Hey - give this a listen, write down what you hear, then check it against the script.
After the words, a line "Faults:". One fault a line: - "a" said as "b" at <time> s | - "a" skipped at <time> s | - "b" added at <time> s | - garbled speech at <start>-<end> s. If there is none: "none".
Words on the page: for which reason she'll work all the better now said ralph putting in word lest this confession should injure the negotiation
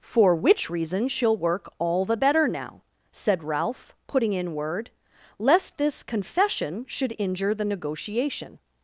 for which reason she'll work all the better now said ralph putting in word lest this confession should injure the negotiation
Faults:
none